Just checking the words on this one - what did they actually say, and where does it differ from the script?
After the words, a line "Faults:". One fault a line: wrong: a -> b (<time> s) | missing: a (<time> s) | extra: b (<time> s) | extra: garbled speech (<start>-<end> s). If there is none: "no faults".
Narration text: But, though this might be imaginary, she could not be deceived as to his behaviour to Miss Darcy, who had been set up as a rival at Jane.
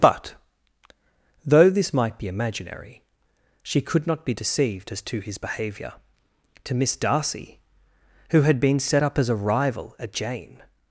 But, though this might be imaginary, she could not be deceived as to his behaviour to Miss Darcy, who had been set up as a rival at Jane.
Faults:
no faults